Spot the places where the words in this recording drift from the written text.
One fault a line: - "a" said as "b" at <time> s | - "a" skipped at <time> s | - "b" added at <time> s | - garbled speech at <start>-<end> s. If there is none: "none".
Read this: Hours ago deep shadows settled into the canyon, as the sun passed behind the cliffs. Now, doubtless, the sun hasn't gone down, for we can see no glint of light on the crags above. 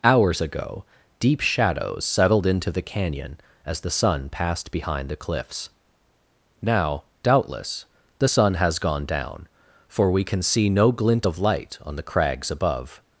- "hasn't" said as "has" at 8.5 s